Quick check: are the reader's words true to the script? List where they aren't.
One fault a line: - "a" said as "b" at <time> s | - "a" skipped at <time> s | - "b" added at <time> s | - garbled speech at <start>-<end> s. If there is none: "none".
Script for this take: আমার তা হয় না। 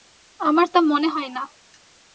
- "মনে" added at 0.8 s